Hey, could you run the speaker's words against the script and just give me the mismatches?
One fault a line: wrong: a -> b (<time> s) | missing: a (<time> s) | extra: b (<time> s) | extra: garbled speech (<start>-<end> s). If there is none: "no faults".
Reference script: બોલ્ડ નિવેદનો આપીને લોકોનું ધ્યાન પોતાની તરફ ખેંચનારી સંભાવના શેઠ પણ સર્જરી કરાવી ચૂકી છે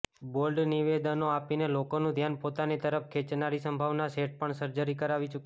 no faults